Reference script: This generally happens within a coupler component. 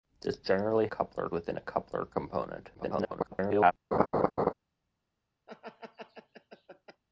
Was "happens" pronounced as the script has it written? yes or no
no